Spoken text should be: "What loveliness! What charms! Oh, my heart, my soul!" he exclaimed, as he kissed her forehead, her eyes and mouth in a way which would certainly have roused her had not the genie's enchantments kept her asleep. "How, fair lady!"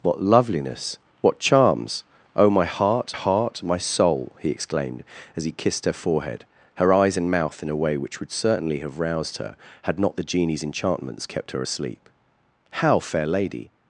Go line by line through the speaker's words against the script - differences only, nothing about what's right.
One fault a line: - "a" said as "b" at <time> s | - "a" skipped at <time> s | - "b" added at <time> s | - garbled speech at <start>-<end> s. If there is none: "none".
- "heart" added at 3.1 s